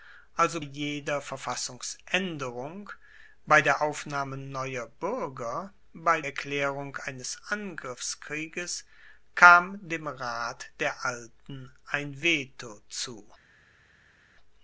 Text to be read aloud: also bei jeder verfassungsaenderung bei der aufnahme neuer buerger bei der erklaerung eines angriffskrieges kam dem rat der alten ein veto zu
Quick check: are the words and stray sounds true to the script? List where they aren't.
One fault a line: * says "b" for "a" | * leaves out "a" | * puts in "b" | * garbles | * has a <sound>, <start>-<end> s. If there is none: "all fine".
* leaves out "bei"
* leaves out "der"